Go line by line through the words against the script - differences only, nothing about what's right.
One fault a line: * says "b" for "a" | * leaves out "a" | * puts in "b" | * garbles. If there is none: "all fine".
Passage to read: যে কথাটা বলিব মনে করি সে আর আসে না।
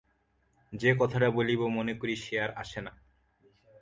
all fine